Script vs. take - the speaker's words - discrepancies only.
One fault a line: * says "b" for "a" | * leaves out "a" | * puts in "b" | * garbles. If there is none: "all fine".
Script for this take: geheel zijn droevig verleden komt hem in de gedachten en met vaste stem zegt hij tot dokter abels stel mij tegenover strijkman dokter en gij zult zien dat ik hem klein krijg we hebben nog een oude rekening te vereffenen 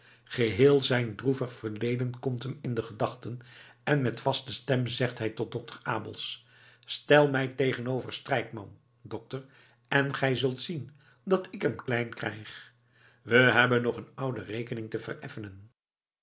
all fine